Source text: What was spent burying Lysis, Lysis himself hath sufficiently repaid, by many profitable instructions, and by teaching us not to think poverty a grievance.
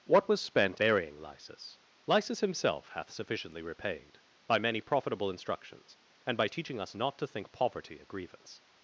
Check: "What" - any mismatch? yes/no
no